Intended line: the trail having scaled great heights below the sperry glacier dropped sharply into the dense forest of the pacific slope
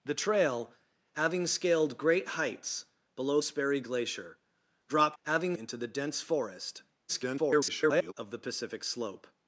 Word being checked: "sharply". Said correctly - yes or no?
no